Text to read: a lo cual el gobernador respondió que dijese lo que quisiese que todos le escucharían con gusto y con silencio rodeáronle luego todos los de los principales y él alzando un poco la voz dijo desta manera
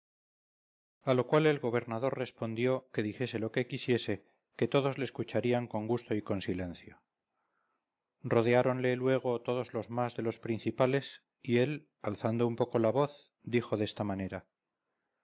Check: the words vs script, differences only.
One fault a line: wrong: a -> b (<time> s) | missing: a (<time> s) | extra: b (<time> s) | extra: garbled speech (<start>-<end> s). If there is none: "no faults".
extra: más (9.9 s)